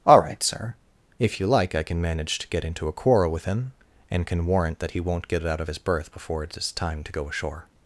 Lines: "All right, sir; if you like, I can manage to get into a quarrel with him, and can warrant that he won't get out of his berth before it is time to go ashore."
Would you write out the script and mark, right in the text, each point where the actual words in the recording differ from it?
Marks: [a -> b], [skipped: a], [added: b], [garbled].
"All right, sir; if you like, I can manage to get into a quarrel with him, and can warrant that he won't get out of his berth before it is time to go ashore."